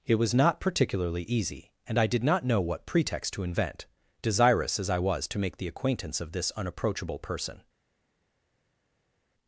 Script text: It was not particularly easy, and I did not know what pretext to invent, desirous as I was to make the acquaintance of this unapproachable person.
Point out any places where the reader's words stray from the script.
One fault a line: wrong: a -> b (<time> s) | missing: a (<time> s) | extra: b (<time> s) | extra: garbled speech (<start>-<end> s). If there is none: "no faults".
no faults